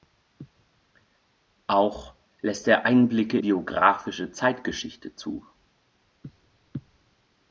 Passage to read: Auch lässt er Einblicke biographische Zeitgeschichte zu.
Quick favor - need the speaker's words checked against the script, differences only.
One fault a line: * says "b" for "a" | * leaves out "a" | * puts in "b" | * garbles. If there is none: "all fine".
all fine